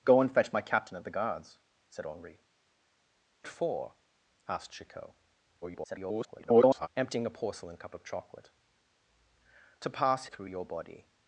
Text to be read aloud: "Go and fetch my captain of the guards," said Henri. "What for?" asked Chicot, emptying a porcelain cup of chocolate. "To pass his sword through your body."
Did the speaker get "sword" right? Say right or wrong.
wrong